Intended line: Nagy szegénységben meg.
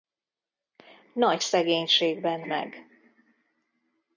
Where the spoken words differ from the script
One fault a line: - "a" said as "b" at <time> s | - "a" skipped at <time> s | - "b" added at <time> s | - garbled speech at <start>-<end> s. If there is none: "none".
none